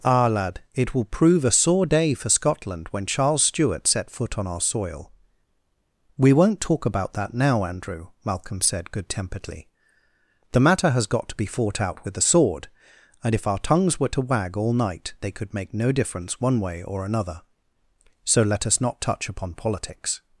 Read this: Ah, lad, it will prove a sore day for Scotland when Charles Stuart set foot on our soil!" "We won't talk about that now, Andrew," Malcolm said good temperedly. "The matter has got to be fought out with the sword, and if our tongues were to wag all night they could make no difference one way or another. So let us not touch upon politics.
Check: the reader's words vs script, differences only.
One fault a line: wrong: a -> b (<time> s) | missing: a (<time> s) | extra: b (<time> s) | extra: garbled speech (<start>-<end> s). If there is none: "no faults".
no faults